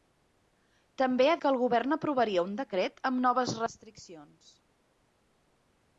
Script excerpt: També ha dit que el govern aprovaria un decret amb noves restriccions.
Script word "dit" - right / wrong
wrong